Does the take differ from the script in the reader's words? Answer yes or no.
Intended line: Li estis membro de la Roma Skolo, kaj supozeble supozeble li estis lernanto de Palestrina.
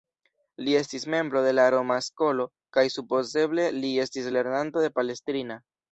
yes